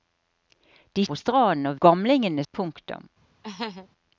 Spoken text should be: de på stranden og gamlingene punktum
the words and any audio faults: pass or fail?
fail